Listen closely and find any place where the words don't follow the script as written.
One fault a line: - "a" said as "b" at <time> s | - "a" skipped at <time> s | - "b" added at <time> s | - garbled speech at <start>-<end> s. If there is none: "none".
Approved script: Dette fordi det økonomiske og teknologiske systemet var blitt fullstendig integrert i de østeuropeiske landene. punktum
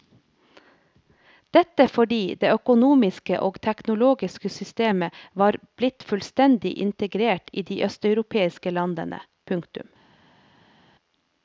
none